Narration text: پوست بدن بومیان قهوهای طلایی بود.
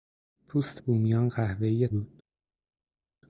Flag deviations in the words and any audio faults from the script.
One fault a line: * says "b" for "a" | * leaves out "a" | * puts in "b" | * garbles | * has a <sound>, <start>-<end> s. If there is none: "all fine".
* leaves out "بدن"
* leaves out "طلایی"